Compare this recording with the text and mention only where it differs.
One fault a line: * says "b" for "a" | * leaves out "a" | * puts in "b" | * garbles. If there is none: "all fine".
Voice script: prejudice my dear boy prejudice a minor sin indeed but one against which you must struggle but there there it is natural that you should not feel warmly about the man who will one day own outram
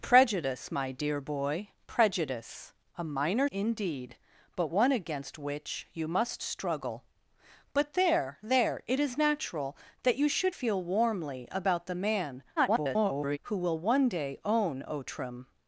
* leaves out "sin"
* leaves out "not"
* garbles